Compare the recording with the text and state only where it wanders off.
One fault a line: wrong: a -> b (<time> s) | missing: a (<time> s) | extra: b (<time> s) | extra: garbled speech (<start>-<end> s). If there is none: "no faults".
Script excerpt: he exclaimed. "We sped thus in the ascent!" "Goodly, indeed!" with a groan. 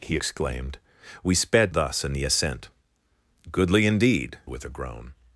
no faults